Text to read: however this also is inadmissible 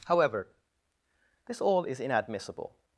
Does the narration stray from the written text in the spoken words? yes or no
yes